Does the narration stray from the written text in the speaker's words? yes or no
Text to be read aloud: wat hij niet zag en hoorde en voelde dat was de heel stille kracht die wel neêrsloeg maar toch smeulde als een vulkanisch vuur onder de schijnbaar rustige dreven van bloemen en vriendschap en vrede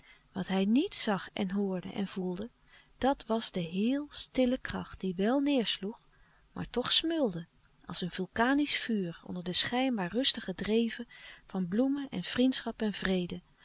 no